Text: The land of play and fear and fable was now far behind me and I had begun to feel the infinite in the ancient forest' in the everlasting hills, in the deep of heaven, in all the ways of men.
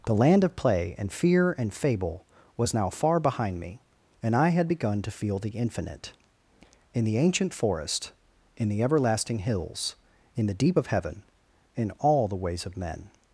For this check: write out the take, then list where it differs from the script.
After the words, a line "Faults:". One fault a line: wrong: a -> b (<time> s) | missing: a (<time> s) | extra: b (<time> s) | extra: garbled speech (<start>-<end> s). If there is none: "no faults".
The land of play and fear and fable was now far behind me and I had begun to feel the infinite in the ancient forest' in the everlasting hills, in the deep of heaven, in all the ways of men.
Faults:
no faults